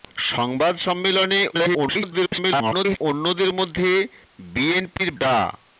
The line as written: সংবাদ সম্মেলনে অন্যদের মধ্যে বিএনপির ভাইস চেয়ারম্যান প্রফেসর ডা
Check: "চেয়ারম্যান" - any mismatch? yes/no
yes